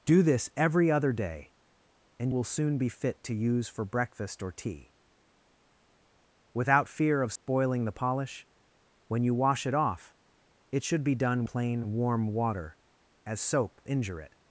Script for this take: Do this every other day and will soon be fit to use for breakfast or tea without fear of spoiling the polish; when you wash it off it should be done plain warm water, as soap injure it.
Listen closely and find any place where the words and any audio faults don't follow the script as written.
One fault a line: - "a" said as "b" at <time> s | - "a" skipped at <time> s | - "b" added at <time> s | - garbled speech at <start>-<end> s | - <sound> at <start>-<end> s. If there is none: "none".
- dropout at 7.4-7.5 s